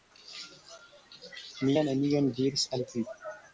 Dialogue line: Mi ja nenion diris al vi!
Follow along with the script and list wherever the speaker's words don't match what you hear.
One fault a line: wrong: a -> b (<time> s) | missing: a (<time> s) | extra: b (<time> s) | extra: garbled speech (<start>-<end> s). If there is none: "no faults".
no faults